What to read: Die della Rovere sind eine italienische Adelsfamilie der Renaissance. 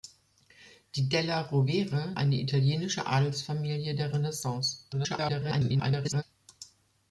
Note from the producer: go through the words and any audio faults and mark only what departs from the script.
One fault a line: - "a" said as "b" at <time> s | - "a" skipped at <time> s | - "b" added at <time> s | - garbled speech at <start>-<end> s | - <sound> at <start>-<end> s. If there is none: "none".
- "sind" skipped at 2.1 s
- garbled speech at 4.9-6.2 s